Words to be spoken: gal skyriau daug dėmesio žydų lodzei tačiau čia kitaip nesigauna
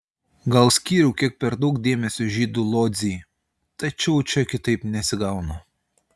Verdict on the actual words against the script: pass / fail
fail